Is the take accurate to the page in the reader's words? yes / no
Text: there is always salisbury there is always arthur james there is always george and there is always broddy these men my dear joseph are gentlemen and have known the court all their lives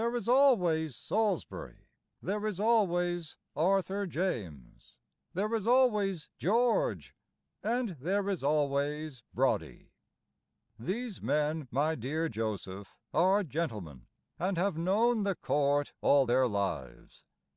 yes